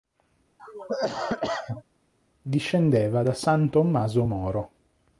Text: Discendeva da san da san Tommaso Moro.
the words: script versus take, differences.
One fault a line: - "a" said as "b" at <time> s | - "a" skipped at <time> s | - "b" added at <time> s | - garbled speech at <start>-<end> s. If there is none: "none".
- "da san" skipped at 3.7 s